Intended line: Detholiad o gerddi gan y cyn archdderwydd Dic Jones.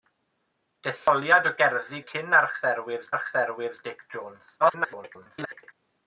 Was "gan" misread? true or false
true